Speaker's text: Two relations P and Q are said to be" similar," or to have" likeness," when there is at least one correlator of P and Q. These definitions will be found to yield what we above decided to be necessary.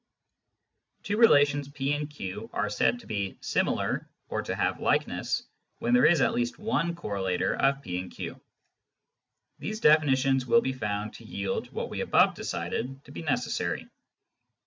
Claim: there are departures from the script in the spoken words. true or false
false